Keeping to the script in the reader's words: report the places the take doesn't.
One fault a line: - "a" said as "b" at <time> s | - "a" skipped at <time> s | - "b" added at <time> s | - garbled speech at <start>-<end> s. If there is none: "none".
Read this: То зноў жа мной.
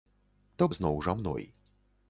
none